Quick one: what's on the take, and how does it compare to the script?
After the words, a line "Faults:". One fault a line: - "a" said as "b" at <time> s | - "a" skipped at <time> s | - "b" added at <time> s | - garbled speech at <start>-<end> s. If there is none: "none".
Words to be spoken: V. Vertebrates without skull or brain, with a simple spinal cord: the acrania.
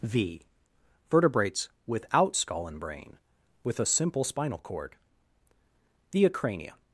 V. Vertebrates without skull and brain, with a simple spinal cord: the acrania.
Faults:
- "or" said as "and" at 2.7 s